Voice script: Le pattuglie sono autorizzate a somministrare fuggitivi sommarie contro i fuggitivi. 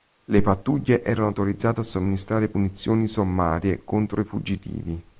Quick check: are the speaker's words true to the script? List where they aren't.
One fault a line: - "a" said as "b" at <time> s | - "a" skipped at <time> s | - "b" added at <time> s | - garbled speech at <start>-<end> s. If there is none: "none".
- "sono" said as "erano" at 1.0 s
- "fuggitivi" said as "punizioni" at 2.5 s